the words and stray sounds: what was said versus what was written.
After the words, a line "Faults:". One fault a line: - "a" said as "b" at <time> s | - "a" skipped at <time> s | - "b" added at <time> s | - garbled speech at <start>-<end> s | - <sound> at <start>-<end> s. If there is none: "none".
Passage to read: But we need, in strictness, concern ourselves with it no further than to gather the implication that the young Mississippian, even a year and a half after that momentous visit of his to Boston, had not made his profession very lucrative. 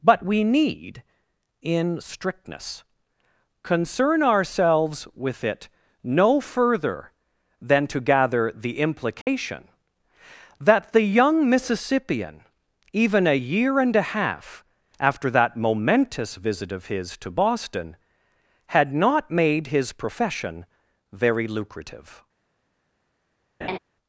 But we need, in strictness, concern ourselves with it no further than to gather the implication that the young Mississippian, even a year and a half after that momentous visit of his to Boston, had not made his profession very lucrative.
Faults:
- dropout at 9.2-9.3 s
- laugh at 23.6-23.8 s